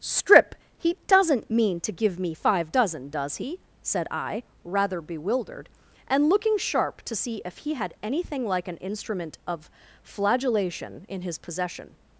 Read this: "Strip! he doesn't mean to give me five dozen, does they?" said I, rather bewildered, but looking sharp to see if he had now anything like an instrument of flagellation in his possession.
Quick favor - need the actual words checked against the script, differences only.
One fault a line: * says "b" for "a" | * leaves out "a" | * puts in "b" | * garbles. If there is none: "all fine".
* says "he" for "they"
* says "and" for "but"
* leaves out "now"